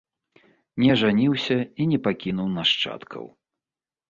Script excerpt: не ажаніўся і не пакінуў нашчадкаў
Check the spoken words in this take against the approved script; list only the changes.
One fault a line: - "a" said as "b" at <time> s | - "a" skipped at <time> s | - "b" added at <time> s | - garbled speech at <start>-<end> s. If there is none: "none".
none